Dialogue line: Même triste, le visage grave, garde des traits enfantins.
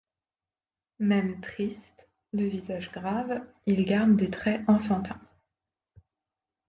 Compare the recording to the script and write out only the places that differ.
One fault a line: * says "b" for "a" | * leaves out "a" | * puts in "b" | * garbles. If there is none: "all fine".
* puts in "il"